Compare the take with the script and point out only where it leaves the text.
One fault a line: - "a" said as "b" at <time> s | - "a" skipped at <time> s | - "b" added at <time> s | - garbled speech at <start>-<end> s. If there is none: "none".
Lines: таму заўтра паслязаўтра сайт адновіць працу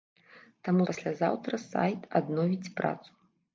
- "заўтра" skipped at 0.8 s